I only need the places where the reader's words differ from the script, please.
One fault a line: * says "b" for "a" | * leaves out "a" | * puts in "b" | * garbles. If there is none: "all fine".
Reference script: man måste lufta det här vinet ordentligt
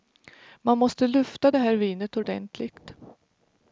all fine